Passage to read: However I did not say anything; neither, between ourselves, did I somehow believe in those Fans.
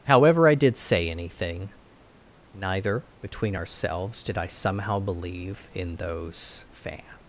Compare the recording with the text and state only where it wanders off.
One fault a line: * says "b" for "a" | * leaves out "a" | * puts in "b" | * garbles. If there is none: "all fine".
* leaves out "not"